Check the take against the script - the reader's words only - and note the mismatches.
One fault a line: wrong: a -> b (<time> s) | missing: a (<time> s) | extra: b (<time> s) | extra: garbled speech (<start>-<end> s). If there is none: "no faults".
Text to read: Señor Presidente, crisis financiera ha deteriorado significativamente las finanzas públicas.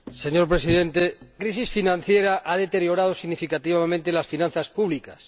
no faults